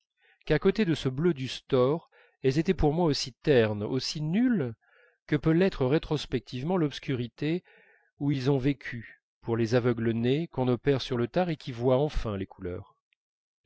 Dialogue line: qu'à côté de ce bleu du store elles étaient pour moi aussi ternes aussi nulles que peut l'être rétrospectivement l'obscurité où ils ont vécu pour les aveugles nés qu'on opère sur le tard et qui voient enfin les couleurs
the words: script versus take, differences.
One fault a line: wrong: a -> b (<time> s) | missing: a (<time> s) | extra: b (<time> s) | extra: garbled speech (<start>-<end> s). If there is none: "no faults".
no faults